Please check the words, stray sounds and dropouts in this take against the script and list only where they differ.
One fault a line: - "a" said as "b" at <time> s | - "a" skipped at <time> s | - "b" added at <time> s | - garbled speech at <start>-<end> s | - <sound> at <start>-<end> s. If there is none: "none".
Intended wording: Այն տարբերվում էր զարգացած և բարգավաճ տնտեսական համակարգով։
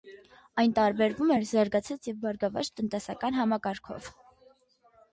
none